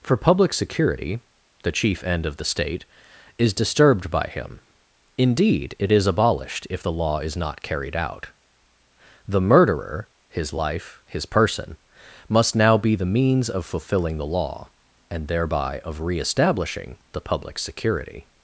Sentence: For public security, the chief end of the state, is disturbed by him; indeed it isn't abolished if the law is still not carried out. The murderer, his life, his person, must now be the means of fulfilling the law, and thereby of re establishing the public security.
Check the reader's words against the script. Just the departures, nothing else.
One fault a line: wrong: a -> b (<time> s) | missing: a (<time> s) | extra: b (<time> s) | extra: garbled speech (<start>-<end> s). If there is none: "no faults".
wrong: isn't -> is (5.9 s)
missing: still (7.4 s)